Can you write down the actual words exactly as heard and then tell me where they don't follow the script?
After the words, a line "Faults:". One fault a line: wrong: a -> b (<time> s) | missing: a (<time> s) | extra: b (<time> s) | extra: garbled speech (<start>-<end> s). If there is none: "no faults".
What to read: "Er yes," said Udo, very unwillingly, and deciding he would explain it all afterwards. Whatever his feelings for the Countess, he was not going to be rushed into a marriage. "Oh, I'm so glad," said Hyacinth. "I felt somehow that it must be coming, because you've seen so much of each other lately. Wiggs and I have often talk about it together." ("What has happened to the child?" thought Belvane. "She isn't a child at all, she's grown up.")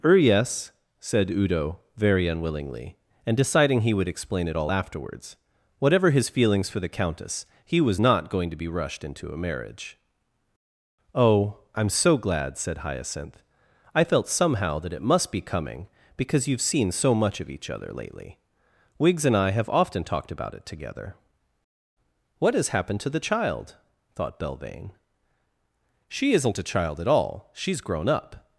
"Er yes," said Udo, very unwillingly, and deciding he would explain it all afterwards. Whatever his feelings for the Countess, he was not going to be rushed into a marriage. "Oh, I'm so glad," said Hyacinth. "I felt somehow that it must be coming, because you've seen so much of each other lately. Wiggs and I have often talked about it together." ("What has happened to the child?" thought Belvane. "She isn't a child at all, she's grown up.")
Faults:
wrong: talk -> talked (20.0 s)